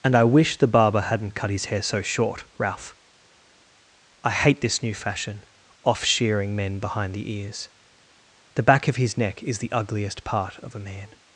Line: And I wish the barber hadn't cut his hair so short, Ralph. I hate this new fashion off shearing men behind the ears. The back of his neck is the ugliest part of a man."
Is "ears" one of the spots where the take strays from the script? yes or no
no